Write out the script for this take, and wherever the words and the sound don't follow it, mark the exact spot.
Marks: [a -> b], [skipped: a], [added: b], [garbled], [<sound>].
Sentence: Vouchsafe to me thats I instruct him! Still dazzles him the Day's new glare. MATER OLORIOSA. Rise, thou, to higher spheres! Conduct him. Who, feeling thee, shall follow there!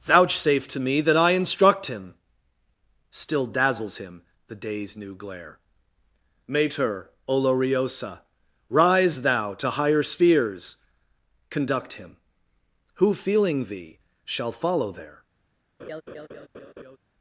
Vouchsafe to me [thats -> that] I instruct him! Still dazzles him the Day's new glare. MATER OLORIOSA. Rise, thou, to higher spheres! Conduct him. Who, feeling thee, shall follow there! [laugh]